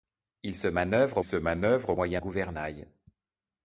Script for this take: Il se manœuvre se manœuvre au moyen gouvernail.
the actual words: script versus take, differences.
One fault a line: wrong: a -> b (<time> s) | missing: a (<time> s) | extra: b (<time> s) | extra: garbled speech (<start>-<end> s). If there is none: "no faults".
no faults